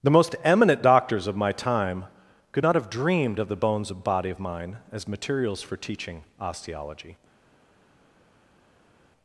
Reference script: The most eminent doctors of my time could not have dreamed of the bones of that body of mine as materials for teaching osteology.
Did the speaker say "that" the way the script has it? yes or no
no